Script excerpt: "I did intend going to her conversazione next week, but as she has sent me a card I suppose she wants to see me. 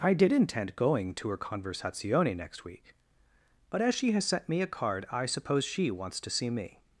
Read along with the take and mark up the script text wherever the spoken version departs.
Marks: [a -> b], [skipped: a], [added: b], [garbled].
"I did intend going to her conversazione next week, but as she has sent me a card I suppose she wants to see me.